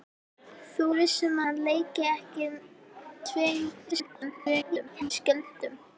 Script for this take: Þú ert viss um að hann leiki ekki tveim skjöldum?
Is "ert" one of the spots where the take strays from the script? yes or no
yes